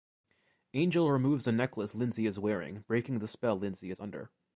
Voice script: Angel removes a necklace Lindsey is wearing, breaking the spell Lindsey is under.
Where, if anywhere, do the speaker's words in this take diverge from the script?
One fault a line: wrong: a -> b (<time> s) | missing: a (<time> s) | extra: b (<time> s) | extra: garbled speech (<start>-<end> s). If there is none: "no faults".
no faults